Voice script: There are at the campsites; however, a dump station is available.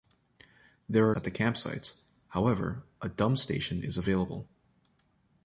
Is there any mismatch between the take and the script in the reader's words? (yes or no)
no